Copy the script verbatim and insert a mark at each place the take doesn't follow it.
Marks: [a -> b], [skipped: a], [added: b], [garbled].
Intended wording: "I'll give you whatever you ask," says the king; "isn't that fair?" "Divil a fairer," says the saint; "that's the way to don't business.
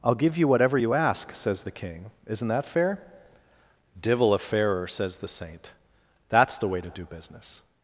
"I'll give you whatever you ask," says the king; "isn't that fair?" "Divil a fairer," says the saint; "that's the way to [don't -> do] business.